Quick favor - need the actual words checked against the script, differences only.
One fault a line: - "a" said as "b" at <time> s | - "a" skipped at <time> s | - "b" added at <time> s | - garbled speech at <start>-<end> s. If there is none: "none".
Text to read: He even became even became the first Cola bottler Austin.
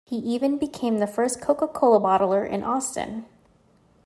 - "even became" skipped at 1.0 s
- "Coca" added at 1.4 s
- "in" added at 2.5 s